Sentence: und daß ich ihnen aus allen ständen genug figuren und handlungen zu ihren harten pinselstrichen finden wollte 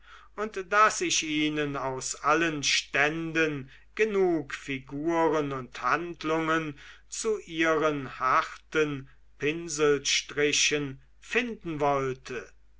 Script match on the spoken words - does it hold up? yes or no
yes